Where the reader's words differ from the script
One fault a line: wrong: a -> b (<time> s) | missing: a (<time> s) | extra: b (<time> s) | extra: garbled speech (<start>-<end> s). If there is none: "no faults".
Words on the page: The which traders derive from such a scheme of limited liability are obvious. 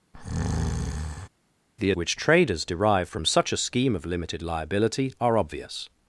no faults